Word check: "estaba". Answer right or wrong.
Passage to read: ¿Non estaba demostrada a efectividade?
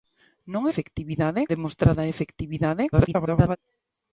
wrong